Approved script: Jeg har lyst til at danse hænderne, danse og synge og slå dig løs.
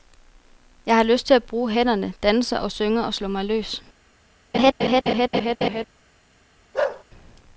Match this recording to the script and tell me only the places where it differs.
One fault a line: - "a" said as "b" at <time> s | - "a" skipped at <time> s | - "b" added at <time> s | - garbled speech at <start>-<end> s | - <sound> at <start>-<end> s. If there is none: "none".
- "danse" said as "bruge" at 1.4 s
- "dig" said as "mig" at 3.3 s
- laugh at 4.5-5.8 s
- bark at 6.7-7.0 s